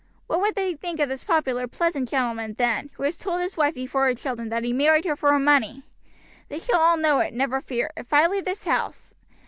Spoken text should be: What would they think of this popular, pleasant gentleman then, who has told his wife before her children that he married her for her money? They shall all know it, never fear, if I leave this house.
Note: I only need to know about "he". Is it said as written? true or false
true